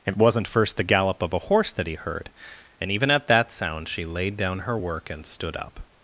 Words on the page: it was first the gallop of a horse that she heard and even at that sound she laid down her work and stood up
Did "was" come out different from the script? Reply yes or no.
yes